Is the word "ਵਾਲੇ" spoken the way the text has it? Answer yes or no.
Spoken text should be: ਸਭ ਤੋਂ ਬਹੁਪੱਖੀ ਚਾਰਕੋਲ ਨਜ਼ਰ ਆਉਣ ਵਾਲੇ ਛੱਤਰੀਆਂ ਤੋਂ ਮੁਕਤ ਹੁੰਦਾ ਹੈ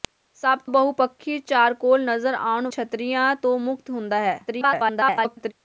no